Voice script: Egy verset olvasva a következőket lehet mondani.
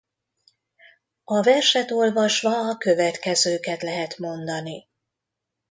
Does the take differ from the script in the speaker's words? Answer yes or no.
yes